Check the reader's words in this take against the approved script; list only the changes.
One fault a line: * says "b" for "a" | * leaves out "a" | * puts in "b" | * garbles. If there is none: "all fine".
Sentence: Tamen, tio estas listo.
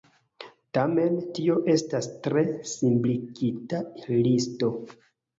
* puts in "tre simpligita"